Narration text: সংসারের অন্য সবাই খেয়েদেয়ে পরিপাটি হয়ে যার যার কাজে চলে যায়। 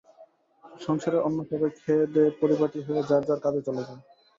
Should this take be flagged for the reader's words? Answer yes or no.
no